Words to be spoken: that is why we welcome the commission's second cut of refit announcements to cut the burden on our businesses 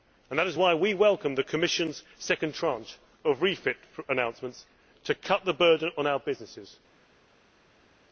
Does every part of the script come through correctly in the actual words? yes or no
no